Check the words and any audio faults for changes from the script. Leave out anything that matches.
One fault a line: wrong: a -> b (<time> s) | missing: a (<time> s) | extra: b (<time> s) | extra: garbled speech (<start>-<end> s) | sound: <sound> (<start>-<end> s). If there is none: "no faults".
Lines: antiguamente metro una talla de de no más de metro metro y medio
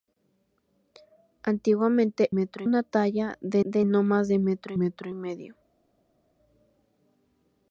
no faults